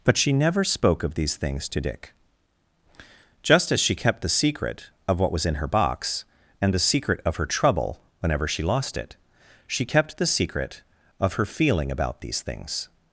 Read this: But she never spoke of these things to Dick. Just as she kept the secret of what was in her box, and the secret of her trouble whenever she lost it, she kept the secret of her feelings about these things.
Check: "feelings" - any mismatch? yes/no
yes